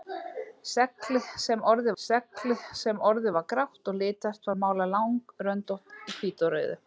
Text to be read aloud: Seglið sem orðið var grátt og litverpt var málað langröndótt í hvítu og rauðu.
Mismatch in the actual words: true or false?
true